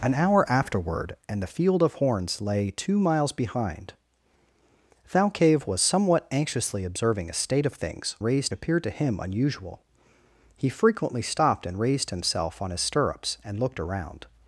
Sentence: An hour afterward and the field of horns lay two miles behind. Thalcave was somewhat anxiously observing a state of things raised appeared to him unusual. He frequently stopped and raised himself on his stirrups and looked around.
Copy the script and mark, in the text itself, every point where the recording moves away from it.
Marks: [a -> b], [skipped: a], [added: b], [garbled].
An hour afterward and the field of horns lay two miles behind. Thalcave was somewhat anxiously observing a state of things raised appeared to him unusual. He frequently stopped and raised himself on his stirrups and looked around.